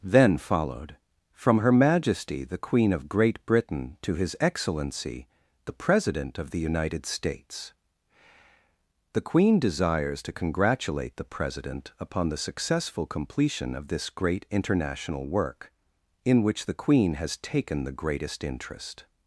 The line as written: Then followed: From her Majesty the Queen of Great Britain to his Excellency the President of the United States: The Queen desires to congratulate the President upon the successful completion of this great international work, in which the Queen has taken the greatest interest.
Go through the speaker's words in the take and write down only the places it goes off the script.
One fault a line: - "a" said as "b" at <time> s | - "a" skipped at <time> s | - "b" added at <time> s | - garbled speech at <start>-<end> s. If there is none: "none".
none